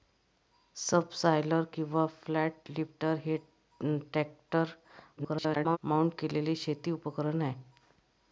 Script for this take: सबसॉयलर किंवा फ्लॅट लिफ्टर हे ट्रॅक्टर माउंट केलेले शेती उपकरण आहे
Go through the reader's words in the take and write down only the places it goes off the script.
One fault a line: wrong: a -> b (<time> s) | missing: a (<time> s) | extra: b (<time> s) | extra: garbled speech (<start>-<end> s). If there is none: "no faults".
extra: garbled speech (5.2-5.8 s)